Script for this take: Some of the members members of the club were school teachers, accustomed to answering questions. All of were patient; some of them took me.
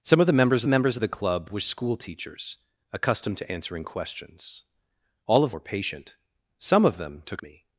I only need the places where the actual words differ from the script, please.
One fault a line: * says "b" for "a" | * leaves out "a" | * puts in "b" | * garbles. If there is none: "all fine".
all fine